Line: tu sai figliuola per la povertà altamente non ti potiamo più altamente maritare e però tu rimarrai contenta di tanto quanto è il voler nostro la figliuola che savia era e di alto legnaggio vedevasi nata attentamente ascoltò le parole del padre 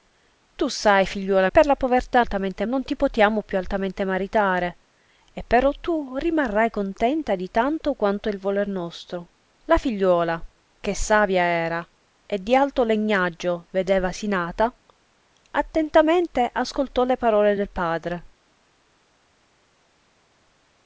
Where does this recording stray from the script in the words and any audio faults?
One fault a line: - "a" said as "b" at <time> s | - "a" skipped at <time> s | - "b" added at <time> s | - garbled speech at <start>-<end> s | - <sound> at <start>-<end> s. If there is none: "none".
none